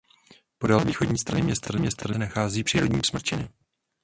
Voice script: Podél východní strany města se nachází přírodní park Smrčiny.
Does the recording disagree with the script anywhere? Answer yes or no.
yes